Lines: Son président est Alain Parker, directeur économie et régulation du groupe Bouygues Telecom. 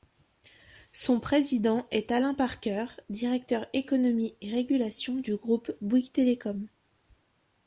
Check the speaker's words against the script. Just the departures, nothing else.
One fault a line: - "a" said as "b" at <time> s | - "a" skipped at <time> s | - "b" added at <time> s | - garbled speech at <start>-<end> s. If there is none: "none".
none